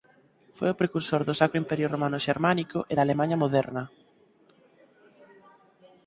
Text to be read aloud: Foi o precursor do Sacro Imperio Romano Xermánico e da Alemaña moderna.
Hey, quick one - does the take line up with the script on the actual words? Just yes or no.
yes